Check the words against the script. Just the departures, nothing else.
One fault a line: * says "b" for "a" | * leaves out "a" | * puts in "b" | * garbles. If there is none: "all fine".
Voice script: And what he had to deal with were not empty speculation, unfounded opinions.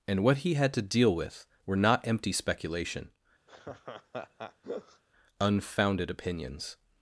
all fine